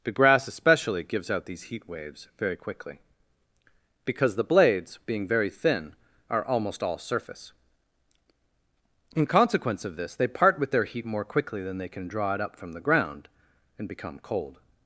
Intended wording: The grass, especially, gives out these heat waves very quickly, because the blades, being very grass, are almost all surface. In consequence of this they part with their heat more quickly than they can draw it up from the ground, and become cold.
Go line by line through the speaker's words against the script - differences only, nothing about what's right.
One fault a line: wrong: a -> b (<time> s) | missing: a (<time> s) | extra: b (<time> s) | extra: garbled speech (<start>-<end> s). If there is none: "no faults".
wrong: grass -> thin (5.5 s)